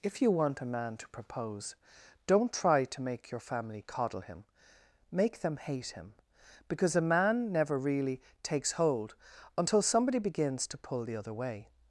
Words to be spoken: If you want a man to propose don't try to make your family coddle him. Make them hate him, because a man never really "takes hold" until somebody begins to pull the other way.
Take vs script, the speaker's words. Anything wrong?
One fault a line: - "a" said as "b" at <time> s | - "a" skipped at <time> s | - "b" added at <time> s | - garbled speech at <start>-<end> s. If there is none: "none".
none